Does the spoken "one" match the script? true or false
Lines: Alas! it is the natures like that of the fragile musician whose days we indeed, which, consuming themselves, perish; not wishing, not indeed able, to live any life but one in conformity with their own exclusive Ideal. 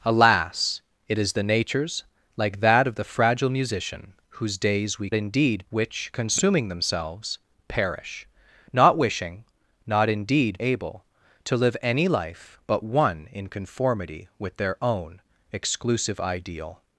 true